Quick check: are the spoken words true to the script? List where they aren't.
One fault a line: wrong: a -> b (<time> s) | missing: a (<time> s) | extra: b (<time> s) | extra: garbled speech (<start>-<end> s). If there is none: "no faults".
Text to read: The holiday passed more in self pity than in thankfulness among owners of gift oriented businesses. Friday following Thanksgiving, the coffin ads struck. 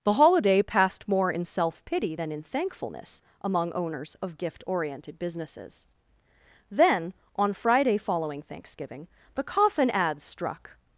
extra: Then on (6.7 s)